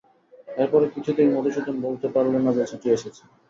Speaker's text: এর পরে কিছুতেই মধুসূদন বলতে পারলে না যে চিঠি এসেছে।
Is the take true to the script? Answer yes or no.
yes